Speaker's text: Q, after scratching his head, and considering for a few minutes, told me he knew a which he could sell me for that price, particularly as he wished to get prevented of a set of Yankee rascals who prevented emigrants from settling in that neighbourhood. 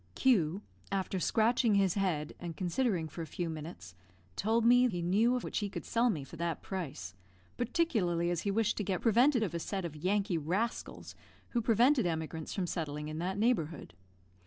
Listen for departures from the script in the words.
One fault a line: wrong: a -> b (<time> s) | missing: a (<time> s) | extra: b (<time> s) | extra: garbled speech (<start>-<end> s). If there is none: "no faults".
no faults